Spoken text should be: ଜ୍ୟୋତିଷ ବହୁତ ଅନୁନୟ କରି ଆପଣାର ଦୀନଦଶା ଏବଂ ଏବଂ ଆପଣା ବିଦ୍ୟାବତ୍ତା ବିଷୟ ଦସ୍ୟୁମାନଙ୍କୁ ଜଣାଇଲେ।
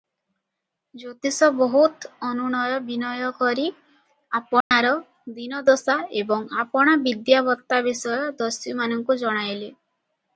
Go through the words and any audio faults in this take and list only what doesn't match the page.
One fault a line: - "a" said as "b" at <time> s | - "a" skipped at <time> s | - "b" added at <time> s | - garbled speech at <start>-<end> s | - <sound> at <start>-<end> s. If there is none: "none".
- "ବିନୟ" added at 2.9 s
- dropout at 4.6-4.7 s
- "ଏବଂ" skipped at 6.5 s